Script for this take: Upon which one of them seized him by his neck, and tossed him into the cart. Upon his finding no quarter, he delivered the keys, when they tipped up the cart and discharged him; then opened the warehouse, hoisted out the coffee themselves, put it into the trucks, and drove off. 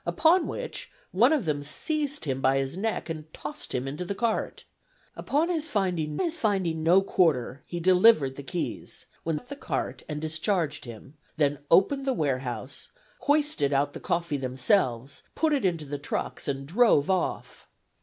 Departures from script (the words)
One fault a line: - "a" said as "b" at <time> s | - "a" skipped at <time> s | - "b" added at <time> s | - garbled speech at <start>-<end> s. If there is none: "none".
- "his finding" added at 6.2 s
- "they tipped" skipped at 9.4 s